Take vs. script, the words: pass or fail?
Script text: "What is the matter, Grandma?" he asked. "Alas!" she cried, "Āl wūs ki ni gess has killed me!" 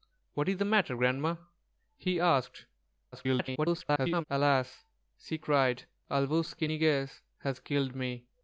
fail